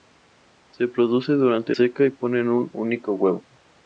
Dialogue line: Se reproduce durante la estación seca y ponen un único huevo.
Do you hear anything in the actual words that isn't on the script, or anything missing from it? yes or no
yes